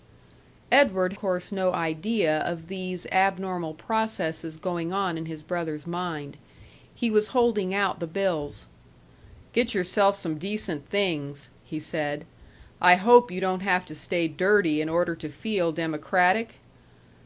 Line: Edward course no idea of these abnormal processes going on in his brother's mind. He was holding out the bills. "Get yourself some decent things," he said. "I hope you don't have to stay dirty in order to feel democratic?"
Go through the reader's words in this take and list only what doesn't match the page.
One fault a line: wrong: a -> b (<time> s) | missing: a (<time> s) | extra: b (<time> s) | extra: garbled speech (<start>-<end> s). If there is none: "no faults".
no faults